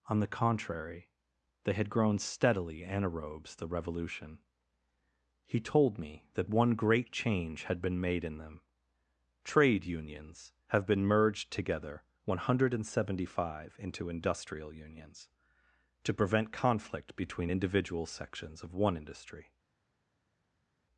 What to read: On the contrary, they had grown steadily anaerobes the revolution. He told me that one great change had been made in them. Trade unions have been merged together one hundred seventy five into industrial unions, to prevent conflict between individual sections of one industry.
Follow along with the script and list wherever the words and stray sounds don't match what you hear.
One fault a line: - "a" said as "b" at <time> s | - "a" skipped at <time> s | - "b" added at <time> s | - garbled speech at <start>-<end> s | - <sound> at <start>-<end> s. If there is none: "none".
none